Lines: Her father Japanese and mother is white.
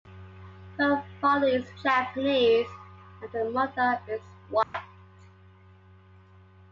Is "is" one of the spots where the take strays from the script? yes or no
no